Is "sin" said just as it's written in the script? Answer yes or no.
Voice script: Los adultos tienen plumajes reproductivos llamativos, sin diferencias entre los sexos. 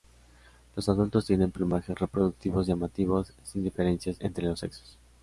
yes